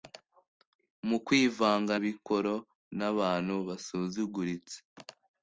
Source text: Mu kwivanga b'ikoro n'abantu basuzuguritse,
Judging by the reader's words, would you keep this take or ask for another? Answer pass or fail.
pass